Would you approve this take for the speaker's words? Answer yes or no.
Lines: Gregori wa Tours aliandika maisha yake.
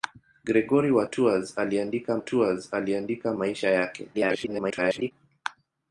no